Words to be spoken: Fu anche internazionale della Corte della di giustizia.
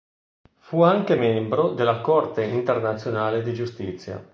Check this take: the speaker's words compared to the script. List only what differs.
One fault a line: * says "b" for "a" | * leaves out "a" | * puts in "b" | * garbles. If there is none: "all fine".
* says "membro" for "internazionale"
* says "internazionale" for "della"